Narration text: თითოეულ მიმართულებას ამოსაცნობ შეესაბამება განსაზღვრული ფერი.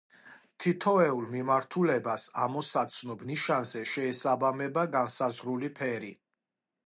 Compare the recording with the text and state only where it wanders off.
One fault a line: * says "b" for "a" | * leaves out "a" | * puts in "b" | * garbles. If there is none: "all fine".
* puts in "ნიშანზე"